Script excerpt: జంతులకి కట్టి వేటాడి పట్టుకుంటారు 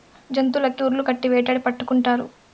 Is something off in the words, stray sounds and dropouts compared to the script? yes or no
yes